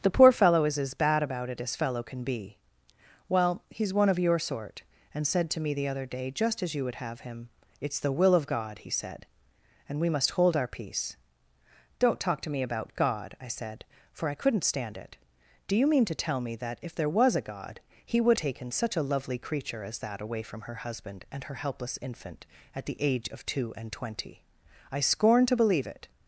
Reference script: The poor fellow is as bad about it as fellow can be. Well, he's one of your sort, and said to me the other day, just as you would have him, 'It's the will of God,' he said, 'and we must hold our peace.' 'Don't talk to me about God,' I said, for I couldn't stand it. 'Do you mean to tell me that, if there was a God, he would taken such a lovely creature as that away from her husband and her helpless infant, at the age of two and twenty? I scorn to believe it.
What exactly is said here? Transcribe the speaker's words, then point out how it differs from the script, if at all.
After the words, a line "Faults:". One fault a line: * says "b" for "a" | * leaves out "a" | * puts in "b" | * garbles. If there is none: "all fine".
The poor fellow is as bad about it as fellow can be. Well, he's one of your sort, and said to me the other day, just as you would have him, 'It's the will of God,' he said, 'and we must hold our peace.' 'Don't talk to me about God,' I said, for I couldn't stand it. 'Do you mean to tell me that, if there was a God, he would taken such a lovely creature as that away from her husband and her helpless infant, at the age of two and twenty? I scorn to believe it.
Faults:
all fine